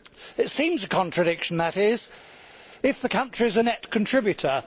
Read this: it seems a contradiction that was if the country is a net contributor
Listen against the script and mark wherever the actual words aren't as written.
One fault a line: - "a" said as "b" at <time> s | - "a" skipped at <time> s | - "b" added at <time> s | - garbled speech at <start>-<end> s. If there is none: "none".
- "was" said as "is" at 1.8 s